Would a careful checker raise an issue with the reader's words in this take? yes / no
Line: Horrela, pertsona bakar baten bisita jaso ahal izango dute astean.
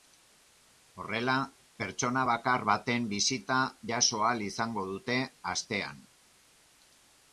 no